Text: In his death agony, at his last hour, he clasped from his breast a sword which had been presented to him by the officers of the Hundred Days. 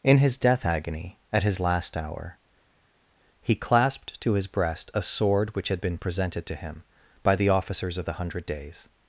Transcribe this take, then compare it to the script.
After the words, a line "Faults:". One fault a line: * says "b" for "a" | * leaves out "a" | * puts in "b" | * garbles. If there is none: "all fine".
In his death agony, at his last hour, he clasped to his breast a sword which had been presented to him by the officers of the Hundred Days.
Faults:
* says "to" for "from"